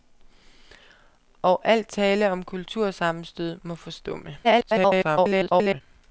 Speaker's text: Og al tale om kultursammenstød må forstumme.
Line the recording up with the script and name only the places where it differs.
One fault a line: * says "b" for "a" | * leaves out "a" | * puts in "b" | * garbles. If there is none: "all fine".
* garbles